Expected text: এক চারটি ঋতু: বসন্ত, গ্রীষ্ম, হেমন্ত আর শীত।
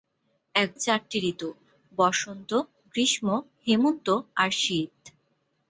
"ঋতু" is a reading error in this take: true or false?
false